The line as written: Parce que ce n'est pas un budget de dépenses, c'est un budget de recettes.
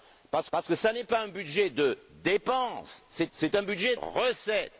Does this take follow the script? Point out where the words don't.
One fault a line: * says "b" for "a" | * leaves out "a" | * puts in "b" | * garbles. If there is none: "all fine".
* puts in "parce"
* puts in "c'est"
* leaves out "de"